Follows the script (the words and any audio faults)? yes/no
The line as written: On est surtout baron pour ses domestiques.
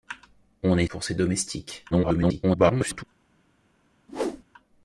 no